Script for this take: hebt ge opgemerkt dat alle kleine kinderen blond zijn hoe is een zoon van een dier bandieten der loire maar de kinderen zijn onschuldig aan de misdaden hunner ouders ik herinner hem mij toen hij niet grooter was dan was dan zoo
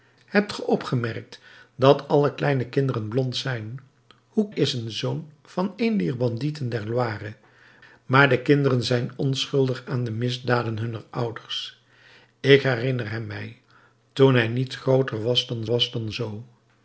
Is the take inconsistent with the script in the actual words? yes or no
no